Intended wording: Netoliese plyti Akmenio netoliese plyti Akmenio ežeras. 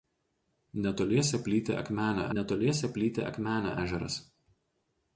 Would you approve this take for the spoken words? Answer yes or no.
yes